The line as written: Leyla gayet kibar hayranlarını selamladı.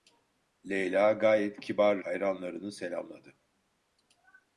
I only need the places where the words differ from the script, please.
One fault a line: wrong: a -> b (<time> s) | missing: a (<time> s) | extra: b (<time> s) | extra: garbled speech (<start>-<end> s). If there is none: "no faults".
no faults